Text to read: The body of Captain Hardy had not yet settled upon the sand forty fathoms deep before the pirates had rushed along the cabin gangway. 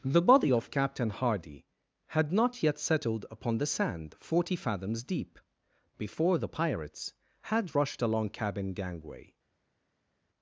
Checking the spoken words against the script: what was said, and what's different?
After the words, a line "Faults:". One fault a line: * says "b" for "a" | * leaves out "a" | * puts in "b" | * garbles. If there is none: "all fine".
The body of Captain Hardy had not yet settled upon the sand forty fathoms deep before the pirates had rushed along cabin gangway.
Faults:
* leaves out "the"